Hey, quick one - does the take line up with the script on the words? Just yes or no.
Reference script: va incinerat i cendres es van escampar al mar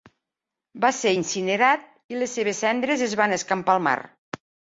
no